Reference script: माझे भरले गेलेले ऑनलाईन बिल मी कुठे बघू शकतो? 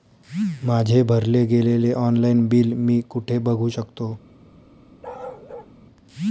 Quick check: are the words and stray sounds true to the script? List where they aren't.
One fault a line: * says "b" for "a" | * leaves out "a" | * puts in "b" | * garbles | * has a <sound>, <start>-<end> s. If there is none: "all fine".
* has a bark, 5.0-5.7 s